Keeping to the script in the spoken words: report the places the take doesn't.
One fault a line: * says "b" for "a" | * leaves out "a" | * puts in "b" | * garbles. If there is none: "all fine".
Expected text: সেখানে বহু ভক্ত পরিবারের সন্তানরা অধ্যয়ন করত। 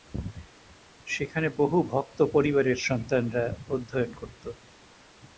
all fine